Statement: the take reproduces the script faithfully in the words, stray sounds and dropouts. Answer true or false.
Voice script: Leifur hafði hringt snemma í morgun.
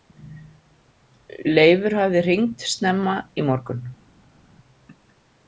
true